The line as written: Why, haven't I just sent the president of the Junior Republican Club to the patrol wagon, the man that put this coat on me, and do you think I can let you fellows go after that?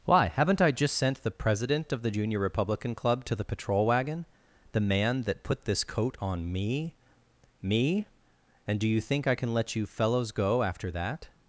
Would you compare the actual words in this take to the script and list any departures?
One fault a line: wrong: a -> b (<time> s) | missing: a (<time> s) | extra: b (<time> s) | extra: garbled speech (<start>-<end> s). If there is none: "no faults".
extra: me (7.6 s)